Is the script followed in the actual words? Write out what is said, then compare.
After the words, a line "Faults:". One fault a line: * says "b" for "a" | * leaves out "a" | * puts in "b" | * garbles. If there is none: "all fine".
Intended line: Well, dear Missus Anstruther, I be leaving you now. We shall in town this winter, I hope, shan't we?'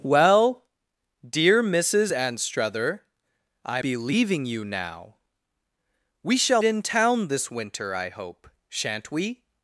Well, dear Missus Anstruther, I be leaving you now. We shall in town this winter, I hope, shan't we?'
Faults:
all fine